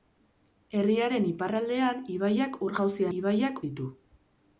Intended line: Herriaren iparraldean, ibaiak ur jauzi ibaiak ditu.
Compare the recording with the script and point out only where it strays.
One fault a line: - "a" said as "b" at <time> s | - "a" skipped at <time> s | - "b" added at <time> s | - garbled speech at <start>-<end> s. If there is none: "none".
none